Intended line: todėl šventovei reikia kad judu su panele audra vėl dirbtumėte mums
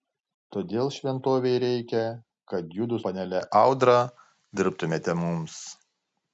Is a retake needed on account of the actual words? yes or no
yes